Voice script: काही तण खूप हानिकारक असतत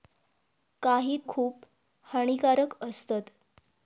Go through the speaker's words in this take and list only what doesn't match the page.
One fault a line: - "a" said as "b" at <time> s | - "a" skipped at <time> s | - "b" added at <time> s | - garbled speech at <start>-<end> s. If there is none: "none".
- "तण" skipped at 1.2 s